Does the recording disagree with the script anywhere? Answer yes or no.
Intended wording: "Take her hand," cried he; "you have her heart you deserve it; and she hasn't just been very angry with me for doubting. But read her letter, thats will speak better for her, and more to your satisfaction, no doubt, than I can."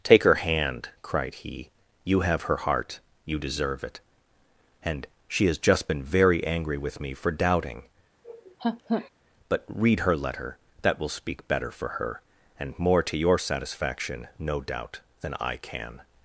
yes